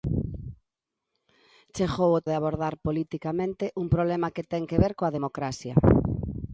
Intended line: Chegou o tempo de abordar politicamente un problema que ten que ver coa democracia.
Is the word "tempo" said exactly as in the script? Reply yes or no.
no